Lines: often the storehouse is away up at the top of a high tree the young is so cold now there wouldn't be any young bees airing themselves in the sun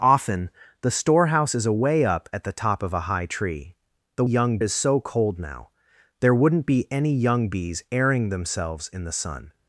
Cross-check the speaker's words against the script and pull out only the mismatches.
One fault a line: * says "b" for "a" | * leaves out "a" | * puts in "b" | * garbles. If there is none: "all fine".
all fine